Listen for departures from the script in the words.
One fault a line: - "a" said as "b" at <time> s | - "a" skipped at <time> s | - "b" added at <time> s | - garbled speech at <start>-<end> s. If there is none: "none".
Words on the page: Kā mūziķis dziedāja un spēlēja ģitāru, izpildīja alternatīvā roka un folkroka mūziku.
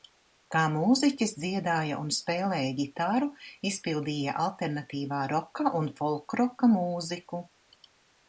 none